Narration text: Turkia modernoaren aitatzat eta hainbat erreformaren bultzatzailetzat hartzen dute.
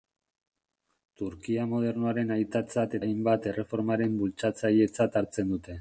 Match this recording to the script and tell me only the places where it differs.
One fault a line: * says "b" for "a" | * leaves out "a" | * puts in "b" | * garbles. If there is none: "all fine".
* leaves out "eta"